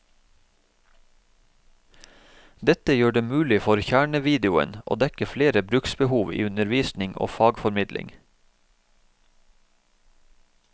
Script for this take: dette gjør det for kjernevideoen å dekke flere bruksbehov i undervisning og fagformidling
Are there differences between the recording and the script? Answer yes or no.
yes